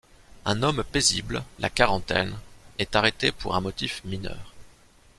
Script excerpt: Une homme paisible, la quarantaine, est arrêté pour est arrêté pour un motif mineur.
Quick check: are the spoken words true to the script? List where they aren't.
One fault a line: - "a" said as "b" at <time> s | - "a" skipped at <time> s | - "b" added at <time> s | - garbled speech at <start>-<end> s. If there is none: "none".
- "Une" said as "Un" at 0.5 s
- "est arrêté pour" skipped at 3.5 s